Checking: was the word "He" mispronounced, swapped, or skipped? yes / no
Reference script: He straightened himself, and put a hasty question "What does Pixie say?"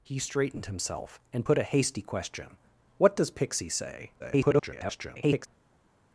no